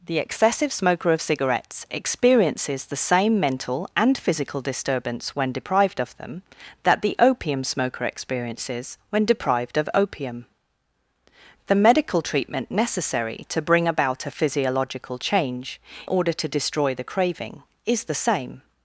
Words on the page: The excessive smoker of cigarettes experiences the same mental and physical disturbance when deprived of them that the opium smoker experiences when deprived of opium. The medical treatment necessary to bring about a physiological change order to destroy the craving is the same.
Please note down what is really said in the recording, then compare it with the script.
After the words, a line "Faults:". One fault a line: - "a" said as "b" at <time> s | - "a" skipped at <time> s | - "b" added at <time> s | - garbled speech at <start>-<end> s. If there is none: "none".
The excessive smoker of cigarettes experiences the same mental and physical disturbance when deprived of them that the opium smoker experiences when deprived of opium. The medical treatment necessary to bring about a physiological change order to destroy the craving is the same.
Faults:
none